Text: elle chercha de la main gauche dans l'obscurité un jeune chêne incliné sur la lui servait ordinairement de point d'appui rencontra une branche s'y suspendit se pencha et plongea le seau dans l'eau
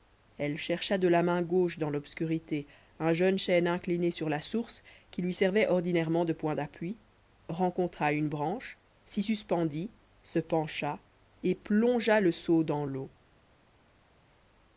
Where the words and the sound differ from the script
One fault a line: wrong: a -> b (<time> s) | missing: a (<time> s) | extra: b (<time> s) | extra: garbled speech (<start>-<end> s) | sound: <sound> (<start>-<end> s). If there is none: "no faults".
extra: source qui (4.4 s)